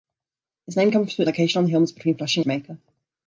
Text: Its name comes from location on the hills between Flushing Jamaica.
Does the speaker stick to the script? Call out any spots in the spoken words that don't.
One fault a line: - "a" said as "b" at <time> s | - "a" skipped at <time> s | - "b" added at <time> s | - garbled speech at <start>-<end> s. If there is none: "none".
none